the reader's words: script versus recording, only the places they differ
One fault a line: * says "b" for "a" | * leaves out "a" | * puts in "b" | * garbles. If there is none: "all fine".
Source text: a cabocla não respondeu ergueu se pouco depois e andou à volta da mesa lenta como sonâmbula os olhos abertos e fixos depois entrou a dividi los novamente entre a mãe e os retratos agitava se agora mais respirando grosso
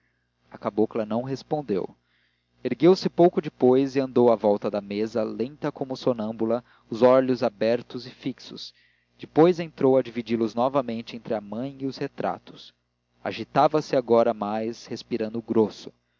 all fine